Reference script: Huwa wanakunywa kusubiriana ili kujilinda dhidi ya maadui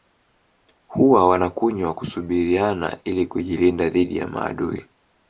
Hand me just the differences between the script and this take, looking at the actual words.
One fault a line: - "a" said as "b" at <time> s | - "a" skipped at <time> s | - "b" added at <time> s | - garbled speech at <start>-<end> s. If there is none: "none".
none